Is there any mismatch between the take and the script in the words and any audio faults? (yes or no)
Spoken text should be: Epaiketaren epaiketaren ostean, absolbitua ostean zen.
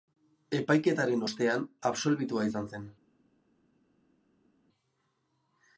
yes